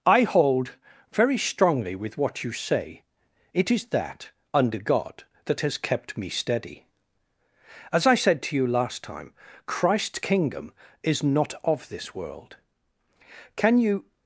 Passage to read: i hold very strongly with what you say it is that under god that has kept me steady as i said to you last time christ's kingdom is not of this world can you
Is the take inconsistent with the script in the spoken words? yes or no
no